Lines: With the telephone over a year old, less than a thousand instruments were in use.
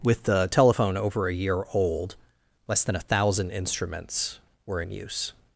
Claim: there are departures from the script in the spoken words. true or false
false